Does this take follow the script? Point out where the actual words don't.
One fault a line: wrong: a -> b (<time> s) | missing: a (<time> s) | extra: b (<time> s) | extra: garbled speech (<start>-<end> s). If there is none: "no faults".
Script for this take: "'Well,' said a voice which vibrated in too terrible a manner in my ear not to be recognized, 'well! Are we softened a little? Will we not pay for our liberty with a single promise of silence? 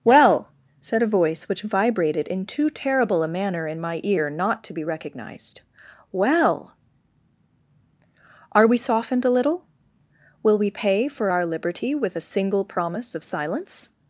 missing: not (10.7 s)